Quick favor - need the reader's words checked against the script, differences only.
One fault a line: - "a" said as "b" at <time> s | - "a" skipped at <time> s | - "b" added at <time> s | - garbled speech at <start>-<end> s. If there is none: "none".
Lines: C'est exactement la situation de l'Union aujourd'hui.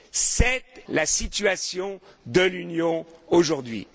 - "exactement" skipped at 0.6 s